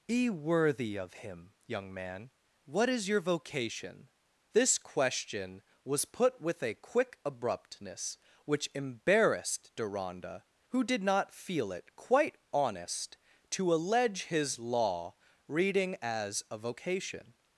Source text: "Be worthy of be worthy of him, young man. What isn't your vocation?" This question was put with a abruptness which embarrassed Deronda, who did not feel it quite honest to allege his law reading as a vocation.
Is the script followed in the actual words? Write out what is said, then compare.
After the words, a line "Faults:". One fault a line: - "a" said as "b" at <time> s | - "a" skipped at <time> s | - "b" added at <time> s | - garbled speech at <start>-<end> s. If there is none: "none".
"Be worthy of him, young man. What is your vocation?" This question was put with a quick abruptness which embarrassed Deronda, who did not feel it quite honest to allege his law reading as a vocation.
Faults:
- "be worthy of" skipped at 1.1 s
- "isn't" said as "is" at 2.9 s
- "quick" added at 6.7 s